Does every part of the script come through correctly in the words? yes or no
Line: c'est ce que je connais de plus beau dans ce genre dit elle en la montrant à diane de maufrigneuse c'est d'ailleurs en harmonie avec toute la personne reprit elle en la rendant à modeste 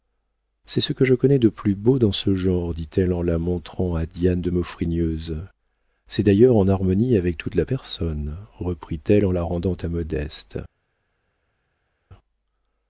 yes